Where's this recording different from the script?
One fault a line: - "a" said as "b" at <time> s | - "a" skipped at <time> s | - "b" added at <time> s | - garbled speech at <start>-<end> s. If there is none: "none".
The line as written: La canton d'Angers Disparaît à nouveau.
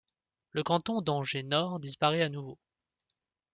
- "La" said as "Le" at 0.5 s
- "Nord" added at 1.4 s